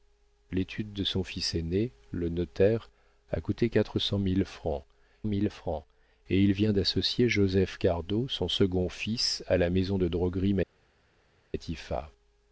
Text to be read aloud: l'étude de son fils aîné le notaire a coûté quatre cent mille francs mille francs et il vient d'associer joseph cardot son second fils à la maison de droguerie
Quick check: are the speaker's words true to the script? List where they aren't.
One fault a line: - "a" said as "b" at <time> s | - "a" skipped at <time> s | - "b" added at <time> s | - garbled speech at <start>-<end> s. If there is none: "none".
none